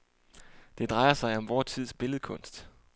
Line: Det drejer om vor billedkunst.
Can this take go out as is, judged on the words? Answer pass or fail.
fail